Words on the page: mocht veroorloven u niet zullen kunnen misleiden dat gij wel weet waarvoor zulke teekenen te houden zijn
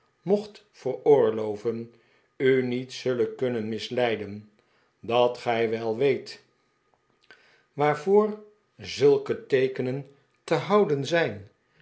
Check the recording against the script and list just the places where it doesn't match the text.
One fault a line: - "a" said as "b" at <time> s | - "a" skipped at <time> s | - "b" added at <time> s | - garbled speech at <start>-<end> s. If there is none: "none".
none